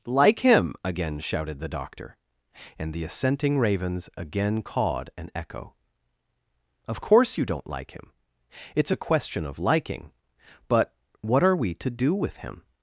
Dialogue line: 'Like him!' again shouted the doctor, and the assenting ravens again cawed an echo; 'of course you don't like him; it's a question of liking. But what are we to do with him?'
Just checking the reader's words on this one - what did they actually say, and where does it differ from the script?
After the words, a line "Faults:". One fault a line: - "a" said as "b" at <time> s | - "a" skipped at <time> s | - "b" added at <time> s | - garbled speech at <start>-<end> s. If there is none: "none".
'Like him!' again shouted the doctor, and the assenting ravens again cawed an echo; 'of course you don't like him; it's a question of liking. But what are we to do with him?'
Faults:
none